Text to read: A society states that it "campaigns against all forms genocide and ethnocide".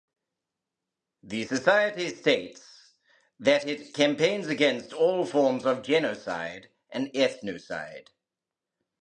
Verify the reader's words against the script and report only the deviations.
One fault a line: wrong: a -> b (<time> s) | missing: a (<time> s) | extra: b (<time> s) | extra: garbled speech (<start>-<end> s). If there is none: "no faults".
wrong: A -> The (1.2 s)
extra: of (5.7 s)